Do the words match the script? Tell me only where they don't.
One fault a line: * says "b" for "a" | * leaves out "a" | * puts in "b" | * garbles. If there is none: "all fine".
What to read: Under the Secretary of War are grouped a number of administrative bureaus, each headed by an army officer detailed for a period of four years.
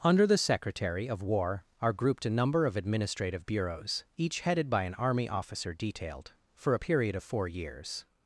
all fine